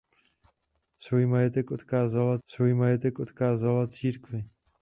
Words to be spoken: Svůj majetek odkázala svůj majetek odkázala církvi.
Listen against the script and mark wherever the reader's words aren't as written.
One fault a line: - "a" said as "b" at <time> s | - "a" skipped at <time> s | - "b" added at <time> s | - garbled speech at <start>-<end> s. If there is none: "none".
none